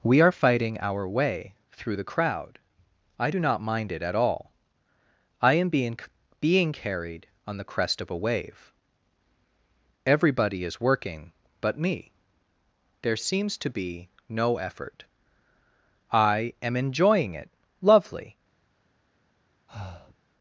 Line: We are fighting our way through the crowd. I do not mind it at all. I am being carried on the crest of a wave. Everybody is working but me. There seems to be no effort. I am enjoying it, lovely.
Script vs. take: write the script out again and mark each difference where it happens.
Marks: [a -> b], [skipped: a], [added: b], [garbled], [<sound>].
We are fighting our way through the crowd. I do not mind it at all. I am being [added: being] carried on the crest of a wave. Everybody is working but me. There seems to be no effort. I am enjoying it, lovely. [breath]